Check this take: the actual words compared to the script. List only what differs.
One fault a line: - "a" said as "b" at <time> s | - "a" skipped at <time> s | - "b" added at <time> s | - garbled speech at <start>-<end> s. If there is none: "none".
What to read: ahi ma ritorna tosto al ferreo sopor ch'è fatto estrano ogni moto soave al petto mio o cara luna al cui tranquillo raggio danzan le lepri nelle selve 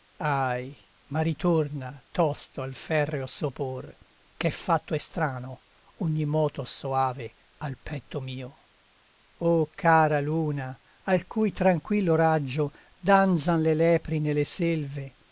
none